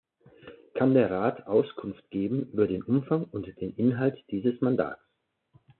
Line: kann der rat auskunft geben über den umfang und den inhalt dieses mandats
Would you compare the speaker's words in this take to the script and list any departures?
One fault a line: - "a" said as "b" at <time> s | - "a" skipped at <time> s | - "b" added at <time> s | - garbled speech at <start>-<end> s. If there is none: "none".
none